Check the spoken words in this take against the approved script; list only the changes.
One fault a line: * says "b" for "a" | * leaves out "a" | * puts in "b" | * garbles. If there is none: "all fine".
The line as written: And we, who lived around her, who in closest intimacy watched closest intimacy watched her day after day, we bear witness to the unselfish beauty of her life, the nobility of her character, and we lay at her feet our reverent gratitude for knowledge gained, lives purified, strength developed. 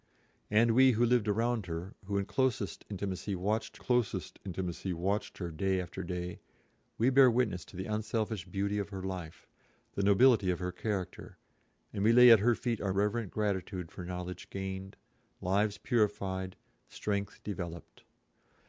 all fine